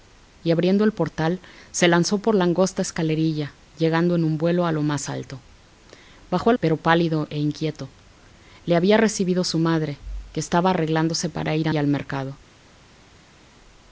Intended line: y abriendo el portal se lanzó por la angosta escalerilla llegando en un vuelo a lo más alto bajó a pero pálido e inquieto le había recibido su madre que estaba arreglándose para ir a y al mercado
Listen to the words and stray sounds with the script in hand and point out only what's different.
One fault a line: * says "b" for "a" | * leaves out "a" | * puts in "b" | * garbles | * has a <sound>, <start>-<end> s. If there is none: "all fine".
all fine